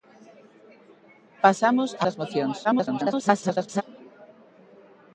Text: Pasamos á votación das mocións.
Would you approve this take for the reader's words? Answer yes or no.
no